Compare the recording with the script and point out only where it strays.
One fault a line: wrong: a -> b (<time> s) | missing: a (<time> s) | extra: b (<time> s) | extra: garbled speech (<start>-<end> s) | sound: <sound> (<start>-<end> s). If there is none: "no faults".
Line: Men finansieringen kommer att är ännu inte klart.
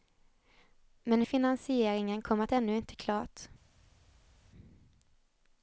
no faults